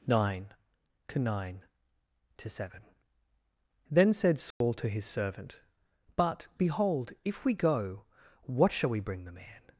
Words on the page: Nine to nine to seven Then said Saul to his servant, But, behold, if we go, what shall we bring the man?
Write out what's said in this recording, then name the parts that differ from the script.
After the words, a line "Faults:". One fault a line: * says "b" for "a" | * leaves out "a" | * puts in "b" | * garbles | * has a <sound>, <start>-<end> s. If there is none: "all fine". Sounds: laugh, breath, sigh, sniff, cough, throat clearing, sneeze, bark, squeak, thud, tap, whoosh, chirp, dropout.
Nine to nine to seven Then said Saul to his servant, But, behold, if we go, what shall we bring the man?
Faults:
* has a dropout, 4.5-4.6 s